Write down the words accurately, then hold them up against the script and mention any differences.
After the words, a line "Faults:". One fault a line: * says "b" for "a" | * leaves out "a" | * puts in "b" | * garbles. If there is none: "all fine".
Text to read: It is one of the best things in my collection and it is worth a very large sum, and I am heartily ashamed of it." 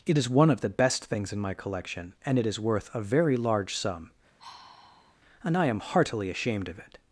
It is one of the best things in my collection and it is worth a very large sum, and I am heartily ashamed of it."
Faults:
all fine